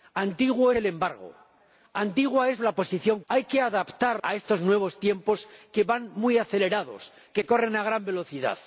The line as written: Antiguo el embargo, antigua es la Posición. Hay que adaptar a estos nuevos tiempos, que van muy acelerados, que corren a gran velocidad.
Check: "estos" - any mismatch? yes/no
no